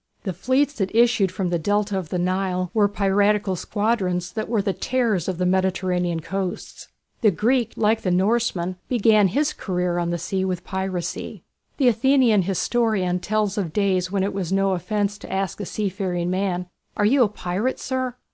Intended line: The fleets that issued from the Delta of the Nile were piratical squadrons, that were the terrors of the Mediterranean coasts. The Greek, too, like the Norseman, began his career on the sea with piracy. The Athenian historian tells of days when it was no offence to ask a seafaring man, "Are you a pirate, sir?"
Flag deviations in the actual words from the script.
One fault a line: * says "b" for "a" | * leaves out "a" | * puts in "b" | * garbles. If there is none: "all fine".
* leaves out "too"